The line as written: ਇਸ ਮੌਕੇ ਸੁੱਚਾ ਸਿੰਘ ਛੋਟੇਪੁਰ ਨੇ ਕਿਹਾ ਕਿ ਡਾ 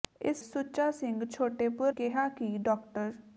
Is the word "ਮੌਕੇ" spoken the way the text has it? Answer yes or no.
no